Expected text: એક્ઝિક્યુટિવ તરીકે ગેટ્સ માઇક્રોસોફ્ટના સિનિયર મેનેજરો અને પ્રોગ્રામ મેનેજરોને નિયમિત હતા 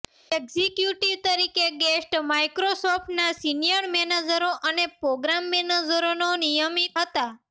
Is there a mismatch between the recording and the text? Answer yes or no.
no